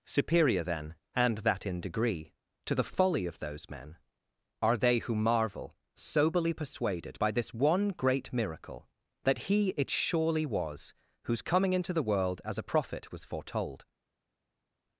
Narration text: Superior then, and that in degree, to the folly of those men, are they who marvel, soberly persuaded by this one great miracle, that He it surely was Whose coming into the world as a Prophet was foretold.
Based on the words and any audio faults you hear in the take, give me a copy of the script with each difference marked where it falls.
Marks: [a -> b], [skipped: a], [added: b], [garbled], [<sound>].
Superior then, and that in degree, to the folly of those men, are they who marvel, soberly persuaded by this one great miracle, that He it surely was Whose coming into the world as a Prophet was foretold.